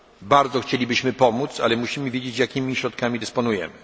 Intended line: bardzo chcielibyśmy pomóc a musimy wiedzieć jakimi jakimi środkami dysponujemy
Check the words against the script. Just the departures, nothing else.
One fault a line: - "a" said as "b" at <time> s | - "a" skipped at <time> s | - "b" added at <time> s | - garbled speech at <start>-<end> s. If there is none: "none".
- "a" said as "ale" at 1.6 s
- "jakimi" skipped at 2.8 s